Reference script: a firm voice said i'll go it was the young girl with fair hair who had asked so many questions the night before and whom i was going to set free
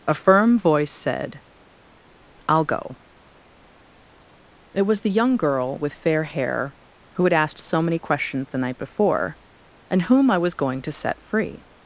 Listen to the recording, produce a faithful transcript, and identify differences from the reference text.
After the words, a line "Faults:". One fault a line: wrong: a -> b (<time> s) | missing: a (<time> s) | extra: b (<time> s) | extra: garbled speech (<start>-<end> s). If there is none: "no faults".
a firm voice said i'll go it was the young girl with fair hair who had asked so many questions the night before and whom i was going to set free
Faults:
no faults